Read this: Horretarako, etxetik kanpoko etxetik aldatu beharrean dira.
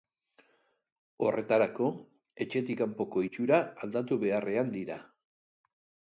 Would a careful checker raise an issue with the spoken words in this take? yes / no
yes